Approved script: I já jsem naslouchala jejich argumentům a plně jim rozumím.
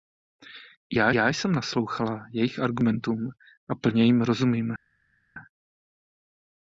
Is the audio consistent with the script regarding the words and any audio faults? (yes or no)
no